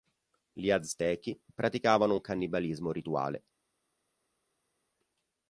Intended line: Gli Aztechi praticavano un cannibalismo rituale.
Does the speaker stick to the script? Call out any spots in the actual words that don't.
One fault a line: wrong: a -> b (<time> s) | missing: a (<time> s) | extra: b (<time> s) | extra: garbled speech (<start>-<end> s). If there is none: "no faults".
no faults